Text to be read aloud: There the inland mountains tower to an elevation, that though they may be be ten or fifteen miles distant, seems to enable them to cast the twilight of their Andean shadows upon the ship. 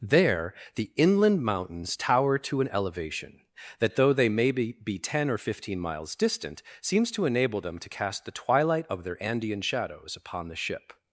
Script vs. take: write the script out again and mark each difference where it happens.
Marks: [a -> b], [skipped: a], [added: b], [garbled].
There the inland mountains tower to an elevation, that though they may be be ten or fifteen miles distant, seems to enable them to cast the twilight of their Andean shadows upon the ship.